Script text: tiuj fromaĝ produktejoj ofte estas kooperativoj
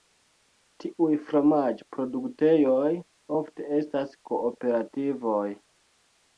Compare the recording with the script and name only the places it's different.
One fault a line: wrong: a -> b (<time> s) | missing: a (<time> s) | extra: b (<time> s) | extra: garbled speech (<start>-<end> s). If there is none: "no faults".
no faults